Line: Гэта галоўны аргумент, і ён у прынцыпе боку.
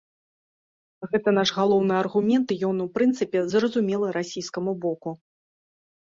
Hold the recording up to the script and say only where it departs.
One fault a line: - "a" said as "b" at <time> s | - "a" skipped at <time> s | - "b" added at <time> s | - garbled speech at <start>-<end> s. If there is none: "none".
- "наш" added at 1.4 s
- "зразумелы расійскаму" added at 3.5 s